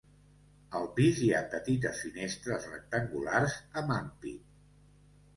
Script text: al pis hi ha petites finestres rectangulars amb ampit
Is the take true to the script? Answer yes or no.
yes